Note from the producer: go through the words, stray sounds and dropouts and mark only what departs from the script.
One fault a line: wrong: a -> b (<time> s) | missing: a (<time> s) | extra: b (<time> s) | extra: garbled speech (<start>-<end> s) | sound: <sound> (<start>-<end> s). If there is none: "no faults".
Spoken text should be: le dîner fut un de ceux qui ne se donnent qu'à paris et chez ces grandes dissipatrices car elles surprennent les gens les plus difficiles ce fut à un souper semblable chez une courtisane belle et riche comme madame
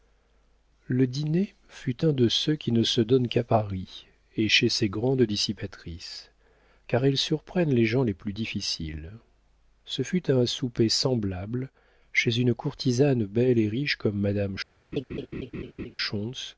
sound: laugh (14.9-16.0 s)